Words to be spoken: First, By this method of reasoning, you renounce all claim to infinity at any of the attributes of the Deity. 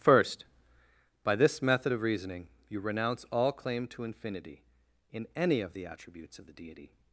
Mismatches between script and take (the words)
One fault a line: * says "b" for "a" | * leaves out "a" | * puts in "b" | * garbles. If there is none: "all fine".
* says "in" for "at"